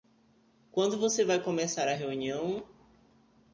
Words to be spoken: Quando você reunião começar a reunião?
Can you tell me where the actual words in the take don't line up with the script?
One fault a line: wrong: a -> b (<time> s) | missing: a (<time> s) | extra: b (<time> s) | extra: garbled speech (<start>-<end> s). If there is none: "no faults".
wrong: reunião -> vai (1.2 s)